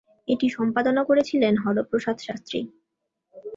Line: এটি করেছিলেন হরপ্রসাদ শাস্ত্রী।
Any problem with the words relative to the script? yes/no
yes